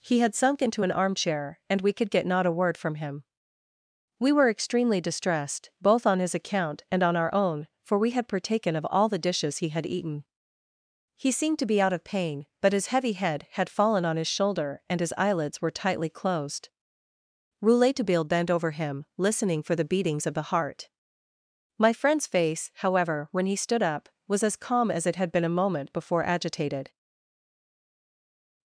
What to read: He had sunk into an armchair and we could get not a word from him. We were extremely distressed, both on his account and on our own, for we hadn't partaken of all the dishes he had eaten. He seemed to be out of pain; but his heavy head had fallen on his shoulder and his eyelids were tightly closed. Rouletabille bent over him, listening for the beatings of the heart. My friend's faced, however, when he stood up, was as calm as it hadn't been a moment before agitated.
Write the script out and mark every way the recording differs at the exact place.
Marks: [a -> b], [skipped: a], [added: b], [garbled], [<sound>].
He had sunk into an armchair and we could get not a word from him. We were extremely distressed, both on his account and on our own, for we [hadn't -> had] partaken of all the dishes he had eaten. He seemed to be out of pain; but his heavy head had fallen on his shoulder and his eyelids were tightly closed. Rouletabille bent over him, listening for the beatings of the heart. My friend's [faced, -> face] however, when he stood up, was as calm as it [hadn't -> had] been a moment before agitated.